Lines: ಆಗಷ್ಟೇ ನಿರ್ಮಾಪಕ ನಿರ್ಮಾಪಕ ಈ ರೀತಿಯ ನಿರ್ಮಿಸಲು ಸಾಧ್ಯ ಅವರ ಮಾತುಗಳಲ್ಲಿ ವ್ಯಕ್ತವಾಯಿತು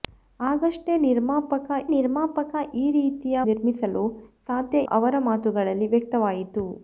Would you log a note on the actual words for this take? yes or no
no